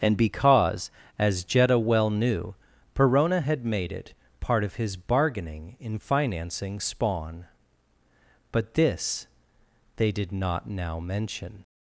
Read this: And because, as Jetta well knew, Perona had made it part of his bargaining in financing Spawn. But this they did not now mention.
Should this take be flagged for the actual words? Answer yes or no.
no